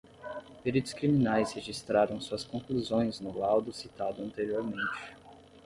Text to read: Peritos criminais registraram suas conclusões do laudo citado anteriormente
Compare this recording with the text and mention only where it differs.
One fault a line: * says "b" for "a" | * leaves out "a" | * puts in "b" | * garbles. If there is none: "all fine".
* says "no" for "do"